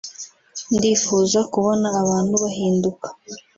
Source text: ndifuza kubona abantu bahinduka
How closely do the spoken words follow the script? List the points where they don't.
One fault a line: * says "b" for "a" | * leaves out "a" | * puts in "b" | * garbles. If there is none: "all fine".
all fine